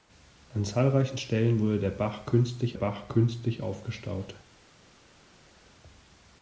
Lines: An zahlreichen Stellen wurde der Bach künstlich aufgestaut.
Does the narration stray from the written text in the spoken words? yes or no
yes